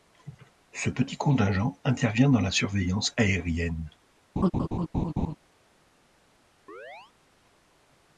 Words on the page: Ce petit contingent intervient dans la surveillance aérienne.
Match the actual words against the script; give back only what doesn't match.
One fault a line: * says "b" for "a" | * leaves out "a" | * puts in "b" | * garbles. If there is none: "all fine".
all fine